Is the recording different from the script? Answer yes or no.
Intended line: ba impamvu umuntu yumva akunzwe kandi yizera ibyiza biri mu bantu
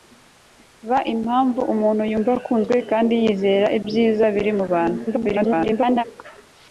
yes